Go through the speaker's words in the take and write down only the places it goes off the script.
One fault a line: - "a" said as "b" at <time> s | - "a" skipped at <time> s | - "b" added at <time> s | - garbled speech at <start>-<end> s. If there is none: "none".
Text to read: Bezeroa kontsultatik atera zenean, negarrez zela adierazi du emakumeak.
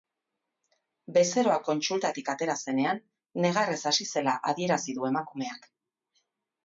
- "hasi" added at 3.9 s